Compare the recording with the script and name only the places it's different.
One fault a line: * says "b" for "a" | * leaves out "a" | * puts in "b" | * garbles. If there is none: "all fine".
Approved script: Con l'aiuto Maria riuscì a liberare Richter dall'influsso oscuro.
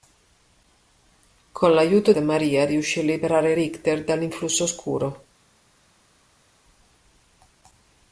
all fine